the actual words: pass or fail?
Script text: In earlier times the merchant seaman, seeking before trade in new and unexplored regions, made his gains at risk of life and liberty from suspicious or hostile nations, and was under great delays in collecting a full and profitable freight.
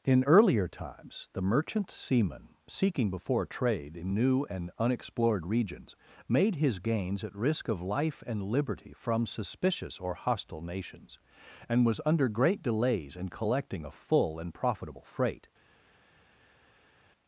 pass